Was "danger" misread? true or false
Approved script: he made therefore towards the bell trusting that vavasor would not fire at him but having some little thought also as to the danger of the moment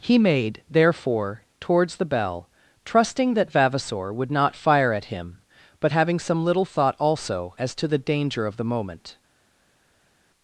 false